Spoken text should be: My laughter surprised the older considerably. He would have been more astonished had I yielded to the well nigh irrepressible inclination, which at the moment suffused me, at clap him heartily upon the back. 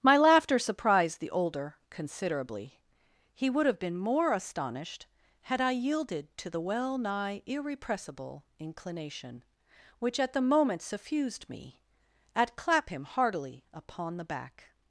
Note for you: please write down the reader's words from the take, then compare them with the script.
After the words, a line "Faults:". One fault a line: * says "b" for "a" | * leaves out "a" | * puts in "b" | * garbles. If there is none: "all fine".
My laughter surprised the older considerably. He would have been more astonished had I yielded to the well nigh irrepressible inclination, which at the moment suffused me, at clap him heartily upon the back.
Faults:
all fine